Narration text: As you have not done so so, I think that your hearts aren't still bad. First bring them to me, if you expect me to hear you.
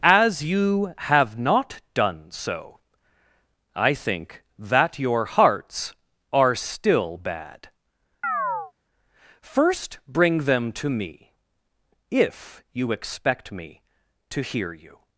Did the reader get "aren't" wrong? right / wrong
wrong